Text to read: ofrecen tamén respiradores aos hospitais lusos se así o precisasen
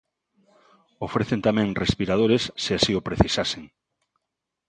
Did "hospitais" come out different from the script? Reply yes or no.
yes